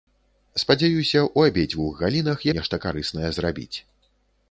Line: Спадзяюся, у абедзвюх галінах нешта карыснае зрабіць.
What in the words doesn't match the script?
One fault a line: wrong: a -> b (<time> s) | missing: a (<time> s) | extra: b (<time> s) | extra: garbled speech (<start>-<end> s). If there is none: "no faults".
no faults